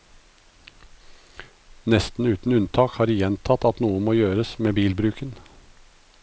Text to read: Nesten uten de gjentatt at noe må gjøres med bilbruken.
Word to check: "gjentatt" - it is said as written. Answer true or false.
true